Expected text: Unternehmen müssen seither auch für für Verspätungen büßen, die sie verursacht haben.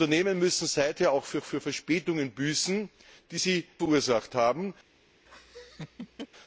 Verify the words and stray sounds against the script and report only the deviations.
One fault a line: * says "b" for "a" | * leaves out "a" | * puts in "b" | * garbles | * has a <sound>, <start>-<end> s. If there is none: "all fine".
* has a laugh, 5.3-6.3 s